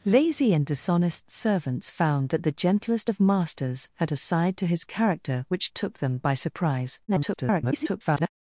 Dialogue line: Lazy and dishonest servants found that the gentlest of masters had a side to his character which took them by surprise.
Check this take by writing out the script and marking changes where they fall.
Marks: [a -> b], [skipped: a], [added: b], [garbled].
Lazy and dishonest servants found that the gentlest of masters had a side to his character which took them by surprise. [garbled]